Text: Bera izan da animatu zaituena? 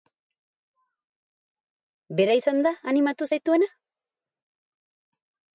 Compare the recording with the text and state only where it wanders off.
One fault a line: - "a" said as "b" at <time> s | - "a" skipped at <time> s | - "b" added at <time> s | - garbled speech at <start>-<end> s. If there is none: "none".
none